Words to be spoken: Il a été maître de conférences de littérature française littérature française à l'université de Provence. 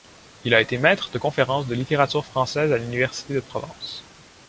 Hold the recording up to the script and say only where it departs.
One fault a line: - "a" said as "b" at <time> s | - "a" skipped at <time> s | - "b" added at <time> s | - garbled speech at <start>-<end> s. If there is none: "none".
- "littérature française" skipped at 2.7 s